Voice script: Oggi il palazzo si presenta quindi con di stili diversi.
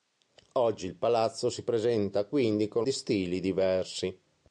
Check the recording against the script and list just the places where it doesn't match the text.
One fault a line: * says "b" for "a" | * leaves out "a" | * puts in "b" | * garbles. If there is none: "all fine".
all fine